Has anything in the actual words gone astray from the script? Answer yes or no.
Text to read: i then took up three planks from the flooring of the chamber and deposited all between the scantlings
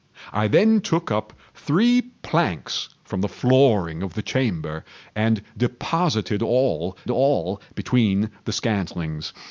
yes